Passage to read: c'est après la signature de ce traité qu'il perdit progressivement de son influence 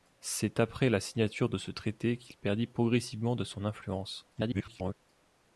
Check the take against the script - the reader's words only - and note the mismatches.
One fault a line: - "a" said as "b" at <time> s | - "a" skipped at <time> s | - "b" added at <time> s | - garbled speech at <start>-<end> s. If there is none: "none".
- garbled speech at 4.3-4.9 s